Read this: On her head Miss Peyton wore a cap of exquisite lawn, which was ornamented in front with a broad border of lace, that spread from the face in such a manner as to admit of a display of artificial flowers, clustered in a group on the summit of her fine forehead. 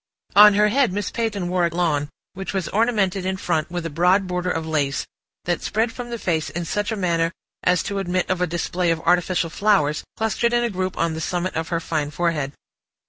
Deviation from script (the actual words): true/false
true